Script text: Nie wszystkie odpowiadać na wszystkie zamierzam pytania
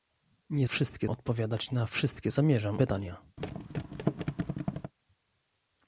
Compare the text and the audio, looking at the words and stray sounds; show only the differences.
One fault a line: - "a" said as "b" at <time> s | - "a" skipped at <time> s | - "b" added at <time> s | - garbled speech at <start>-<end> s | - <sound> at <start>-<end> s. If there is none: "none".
- thud at 3.4-4.9 s